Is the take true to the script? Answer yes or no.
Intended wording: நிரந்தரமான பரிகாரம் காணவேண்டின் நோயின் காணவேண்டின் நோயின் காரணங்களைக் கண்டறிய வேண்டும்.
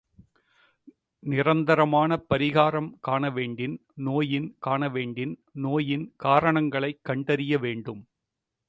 yes